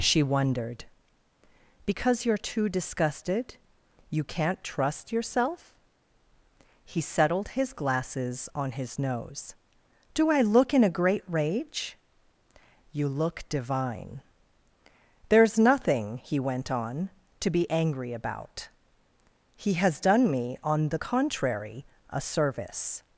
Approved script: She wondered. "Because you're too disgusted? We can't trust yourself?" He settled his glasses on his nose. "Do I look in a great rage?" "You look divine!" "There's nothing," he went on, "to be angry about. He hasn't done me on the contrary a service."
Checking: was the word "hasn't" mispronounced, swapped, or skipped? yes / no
yes